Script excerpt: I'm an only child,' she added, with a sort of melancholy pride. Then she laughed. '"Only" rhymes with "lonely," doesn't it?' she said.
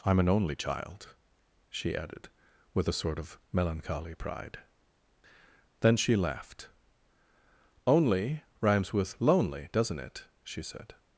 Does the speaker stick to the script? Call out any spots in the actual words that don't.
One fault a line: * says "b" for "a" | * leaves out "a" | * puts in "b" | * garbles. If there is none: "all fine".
all fine